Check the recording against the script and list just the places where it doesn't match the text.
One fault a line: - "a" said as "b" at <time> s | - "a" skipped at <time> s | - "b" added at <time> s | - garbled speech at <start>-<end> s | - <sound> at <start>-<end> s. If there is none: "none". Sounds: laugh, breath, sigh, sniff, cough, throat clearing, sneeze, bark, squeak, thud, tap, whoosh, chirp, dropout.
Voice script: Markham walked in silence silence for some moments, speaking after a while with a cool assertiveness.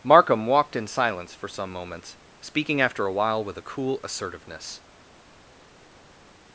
- "silence" skipped at 1.4 s